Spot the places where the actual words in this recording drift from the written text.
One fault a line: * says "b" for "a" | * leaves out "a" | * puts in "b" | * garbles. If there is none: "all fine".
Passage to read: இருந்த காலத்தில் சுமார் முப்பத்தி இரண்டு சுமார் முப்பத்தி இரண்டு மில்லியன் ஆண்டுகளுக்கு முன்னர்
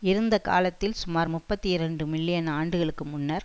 * leaves out "சுமார் முப்பத்தி இரண்டு"